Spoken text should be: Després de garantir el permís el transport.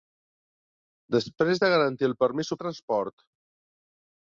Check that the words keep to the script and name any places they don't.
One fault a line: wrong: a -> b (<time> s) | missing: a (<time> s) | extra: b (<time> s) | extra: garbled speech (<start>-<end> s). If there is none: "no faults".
no faults